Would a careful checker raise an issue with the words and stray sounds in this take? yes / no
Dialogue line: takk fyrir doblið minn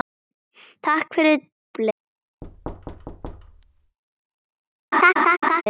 yes